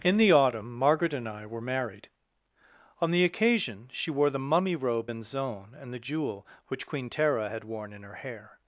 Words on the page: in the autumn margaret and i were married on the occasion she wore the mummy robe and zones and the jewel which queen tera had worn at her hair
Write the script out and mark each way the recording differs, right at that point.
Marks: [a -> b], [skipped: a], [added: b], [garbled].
in the autumn margaret and i were married on the occasion she wore the mummy robe and [zones -> zone] and the jewel which queen tera had worn [at -> in] her hair